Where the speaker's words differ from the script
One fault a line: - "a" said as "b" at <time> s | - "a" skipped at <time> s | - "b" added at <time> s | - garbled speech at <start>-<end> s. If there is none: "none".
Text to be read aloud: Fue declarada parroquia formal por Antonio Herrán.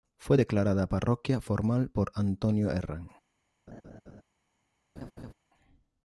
none